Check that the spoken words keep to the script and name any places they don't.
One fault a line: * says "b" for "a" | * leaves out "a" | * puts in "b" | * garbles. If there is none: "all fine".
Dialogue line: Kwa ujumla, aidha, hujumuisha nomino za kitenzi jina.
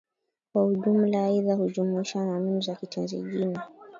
all fine